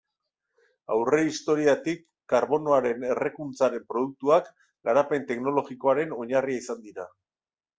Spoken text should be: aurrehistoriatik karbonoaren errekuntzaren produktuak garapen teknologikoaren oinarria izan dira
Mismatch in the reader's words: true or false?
false